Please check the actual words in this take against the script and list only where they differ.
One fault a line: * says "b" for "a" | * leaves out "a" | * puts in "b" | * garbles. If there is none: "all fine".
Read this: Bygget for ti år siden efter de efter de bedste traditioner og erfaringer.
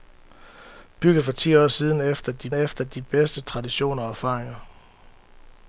all fine